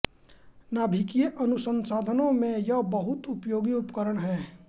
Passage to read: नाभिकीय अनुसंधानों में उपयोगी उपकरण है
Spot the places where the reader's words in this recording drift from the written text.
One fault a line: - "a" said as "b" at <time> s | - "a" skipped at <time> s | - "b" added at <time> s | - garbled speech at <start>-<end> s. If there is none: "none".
- "यह बहुत" added at 2.6 s